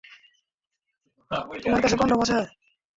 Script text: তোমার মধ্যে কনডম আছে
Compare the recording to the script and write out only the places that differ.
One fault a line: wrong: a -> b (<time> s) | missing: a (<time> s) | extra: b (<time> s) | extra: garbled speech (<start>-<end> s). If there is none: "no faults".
wrong: মধ্যে -> কাছে (1.8 s)